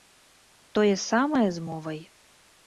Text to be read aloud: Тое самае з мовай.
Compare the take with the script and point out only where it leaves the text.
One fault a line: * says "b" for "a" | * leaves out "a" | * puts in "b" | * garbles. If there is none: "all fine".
all fine